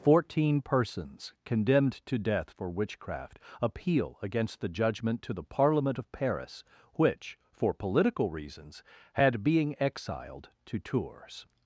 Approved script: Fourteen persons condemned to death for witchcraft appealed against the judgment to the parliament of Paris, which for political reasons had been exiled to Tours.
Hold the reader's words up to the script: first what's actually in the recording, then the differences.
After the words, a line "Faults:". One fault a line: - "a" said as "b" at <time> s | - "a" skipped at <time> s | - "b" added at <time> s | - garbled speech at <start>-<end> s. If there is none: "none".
Fourteen persons condemned to death for witchcraft appeal against the judgment to the parliament of Paris, which for political reasons had being exiled to Tours.
Faults:
- "appealed" said as "appeal" at 3.6 s
- "been" said as "being" at 9.4 s